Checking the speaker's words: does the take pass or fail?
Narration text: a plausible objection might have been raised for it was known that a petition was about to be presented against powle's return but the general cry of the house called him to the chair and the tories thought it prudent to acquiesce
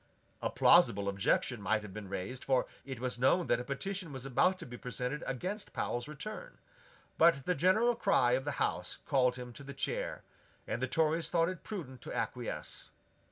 pass